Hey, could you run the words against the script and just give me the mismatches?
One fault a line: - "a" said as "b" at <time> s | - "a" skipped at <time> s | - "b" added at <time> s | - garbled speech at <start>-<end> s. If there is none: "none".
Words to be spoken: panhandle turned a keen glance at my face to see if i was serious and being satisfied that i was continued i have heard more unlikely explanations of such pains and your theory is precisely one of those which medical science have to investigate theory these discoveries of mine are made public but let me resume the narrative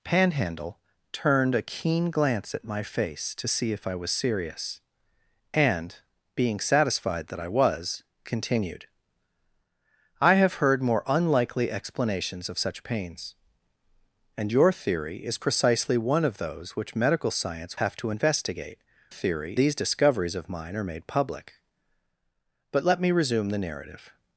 none